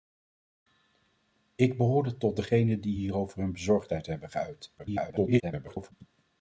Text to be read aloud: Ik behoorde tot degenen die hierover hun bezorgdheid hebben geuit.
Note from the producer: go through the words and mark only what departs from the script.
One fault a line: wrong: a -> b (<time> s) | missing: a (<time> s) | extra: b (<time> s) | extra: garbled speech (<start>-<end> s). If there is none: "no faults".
extra: garbled speech (4.8-5.9 s)